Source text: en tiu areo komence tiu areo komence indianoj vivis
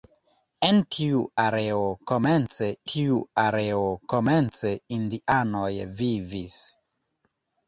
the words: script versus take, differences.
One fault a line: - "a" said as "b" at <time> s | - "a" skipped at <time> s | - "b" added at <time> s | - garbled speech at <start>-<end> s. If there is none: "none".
none